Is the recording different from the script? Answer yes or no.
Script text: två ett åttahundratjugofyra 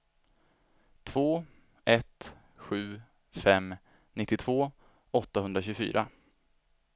yes